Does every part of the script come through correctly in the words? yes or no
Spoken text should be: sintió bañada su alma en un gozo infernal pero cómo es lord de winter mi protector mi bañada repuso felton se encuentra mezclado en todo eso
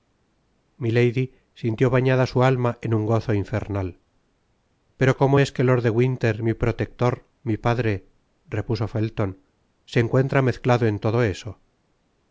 no